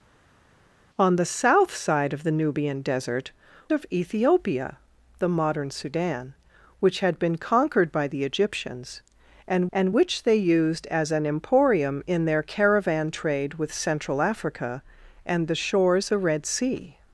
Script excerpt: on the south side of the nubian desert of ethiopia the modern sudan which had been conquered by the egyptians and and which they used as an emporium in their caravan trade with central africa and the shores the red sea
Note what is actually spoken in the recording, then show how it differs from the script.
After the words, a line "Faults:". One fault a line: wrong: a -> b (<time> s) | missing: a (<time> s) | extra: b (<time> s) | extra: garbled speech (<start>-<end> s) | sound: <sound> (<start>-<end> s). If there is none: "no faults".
on the south side of the nubian desert of ethiopia the modern sudan which had been conquered by the egyptians and and which they used as an emporium in their caravan trade with central africa and the shores the red sea
Faults:
no faults